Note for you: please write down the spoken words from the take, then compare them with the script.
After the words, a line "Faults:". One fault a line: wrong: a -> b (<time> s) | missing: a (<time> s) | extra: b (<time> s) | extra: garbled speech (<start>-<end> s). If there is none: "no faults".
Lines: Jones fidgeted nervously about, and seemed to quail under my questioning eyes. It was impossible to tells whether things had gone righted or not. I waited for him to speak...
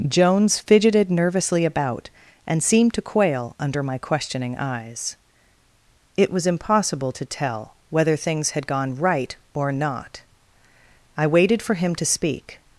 Jones fidgeted nervously about, and seemed to quail under my questioning eyes. It was impossible to tell whether things had gone right or not. I waited for him to speak...
Faults:
wrong: tells -> tell (7.2 s)
wrong: righted -> right (9.0 s)